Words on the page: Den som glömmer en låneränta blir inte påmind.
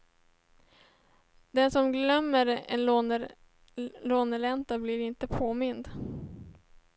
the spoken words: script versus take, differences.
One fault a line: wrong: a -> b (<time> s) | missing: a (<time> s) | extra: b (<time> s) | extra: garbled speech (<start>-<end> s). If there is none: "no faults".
no faults